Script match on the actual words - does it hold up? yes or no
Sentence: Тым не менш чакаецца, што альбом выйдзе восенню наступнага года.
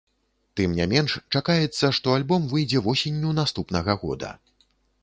yes